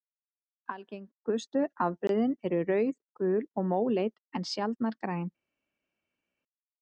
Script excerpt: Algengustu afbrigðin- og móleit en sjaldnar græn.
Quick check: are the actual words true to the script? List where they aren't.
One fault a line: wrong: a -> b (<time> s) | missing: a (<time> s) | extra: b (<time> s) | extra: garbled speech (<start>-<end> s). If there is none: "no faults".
extra: eru rauð gul (2.5 s)